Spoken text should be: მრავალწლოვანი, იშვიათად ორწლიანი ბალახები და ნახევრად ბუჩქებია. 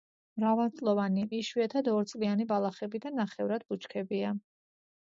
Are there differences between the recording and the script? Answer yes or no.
no